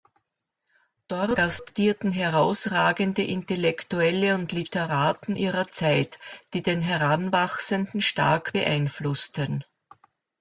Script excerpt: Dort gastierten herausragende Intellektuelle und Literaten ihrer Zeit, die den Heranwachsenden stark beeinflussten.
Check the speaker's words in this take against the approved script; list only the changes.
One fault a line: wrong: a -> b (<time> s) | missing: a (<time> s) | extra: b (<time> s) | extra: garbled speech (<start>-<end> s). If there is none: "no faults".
no faults